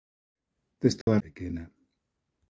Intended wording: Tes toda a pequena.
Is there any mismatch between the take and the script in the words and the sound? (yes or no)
yes